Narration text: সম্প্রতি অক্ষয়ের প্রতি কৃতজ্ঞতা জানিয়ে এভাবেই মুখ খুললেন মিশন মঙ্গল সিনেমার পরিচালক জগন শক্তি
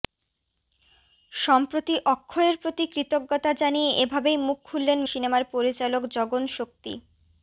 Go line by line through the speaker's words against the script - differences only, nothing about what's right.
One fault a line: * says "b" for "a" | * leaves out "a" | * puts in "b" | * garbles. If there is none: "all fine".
* leaves out "মিশন মঙ্গল"